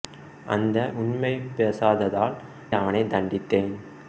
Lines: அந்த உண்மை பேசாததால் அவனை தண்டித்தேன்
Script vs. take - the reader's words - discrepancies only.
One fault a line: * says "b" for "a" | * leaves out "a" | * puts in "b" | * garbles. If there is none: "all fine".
all fine